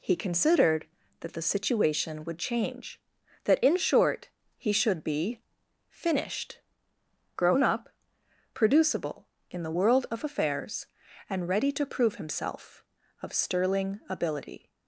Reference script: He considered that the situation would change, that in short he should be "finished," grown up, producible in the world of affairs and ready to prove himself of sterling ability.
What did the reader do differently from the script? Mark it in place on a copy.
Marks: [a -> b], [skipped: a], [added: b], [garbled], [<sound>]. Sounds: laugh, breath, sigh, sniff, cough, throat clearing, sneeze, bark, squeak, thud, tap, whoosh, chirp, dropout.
He considered that the situation would change, that in short he should be "finished," grown up, producible in the world of affairs and ready to prove himself of sterling ability.